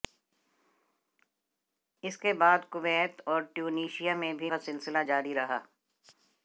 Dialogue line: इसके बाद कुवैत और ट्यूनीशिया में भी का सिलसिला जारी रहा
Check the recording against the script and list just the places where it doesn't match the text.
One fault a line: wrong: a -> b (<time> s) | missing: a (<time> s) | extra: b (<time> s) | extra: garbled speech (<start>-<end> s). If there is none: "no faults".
no faults